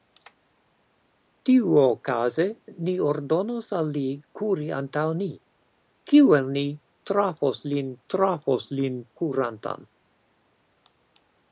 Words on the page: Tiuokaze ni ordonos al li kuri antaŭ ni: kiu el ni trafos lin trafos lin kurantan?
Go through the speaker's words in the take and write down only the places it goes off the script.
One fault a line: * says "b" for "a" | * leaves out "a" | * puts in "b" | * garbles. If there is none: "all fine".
all fine